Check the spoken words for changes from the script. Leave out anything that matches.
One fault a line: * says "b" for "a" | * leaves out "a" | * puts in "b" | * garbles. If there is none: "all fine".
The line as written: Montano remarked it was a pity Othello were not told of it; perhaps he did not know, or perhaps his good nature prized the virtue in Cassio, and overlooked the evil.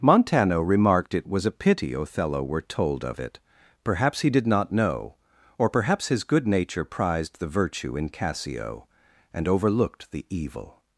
* leaves out "not"